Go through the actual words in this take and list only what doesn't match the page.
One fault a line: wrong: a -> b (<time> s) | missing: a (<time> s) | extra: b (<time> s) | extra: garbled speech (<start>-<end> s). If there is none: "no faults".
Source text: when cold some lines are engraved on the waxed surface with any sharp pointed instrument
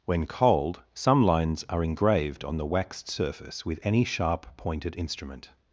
no faults